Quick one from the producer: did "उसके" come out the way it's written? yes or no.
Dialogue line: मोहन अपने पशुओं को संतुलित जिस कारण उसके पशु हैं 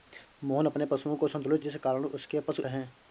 yes